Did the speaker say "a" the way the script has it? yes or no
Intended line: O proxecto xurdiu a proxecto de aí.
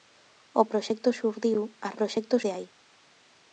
yes